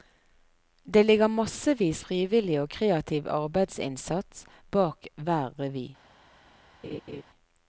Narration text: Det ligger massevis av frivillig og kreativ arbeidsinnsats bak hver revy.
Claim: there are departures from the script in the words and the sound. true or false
true